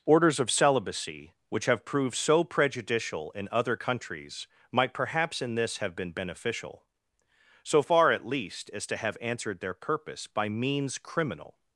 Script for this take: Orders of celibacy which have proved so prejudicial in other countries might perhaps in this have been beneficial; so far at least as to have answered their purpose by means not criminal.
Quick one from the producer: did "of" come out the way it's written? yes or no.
yes